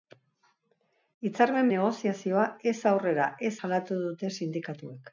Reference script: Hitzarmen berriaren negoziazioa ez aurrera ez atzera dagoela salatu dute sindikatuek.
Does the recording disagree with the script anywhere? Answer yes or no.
yes